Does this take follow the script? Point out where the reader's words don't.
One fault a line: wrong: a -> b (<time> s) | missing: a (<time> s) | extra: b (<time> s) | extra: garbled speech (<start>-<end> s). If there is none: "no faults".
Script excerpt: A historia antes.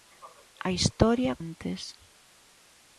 no faults